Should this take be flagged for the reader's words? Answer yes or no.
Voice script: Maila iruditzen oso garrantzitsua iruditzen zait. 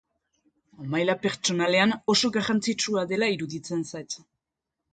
yes